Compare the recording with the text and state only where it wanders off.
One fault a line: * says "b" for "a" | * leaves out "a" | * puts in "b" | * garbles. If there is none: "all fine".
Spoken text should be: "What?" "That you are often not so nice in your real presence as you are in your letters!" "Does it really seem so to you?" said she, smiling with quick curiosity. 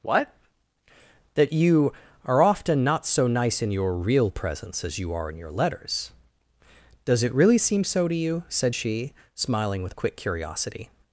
all fine